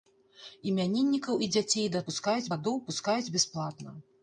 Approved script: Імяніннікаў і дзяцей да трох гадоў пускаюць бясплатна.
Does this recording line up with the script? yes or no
no